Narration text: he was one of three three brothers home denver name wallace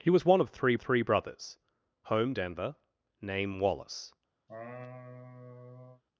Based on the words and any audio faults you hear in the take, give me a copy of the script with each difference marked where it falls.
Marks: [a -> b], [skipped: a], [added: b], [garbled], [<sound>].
he was one of three three brothers home denver name wallace [laugh]